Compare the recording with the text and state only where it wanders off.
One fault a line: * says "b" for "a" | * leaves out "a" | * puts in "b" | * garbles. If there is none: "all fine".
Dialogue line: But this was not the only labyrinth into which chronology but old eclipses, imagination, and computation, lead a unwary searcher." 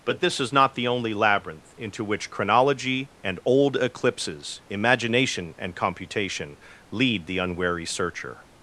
* says "is" for "was"
* says "and" for "but"
* says "the" for "a"